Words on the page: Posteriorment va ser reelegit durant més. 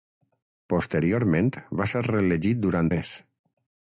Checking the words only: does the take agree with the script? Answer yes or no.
yes